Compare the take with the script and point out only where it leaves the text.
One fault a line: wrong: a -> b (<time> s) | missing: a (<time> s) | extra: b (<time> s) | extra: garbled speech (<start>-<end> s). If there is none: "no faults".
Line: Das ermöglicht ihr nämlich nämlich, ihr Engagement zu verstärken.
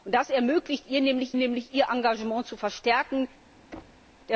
no faults